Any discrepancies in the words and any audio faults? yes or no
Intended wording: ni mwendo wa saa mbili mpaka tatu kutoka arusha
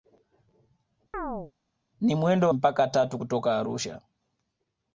yes